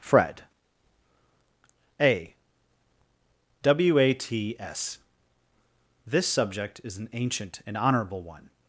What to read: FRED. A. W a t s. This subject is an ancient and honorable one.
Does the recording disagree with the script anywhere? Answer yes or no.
no